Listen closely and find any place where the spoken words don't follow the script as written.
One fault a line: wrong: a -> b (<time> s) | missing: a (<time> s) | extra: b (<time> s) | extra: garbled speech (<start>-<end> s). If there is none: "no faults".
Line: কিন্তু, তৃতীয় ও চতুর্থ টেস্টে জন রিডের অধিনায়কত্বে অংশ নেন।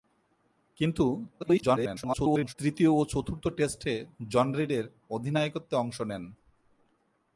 extra: garbled speech (1.4-2.6 s)